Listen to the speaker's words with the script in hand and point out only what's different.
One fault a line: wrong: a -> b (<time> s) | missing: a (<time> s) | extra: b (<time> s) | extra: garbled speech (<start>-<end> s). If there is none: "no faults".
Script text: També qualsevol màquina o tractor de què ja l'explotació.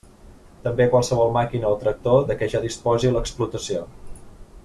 extra: disposi (2.6 s)